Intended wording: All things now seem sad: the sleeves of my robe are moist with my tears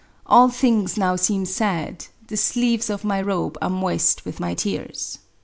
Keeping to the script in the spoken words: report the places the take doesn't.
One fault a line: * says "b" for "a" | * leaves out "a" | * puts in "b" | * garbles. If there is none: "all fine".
all fine